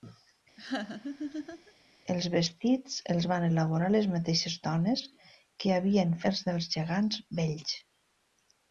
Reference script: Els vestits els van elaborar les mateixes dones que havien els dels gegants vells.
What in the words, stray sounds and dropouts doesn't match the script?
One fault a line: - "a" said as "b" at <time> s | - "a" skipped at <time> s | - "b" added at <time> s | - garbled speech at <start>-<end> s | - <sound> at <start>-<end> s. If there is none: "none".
- laugh at 0.6-1.7 s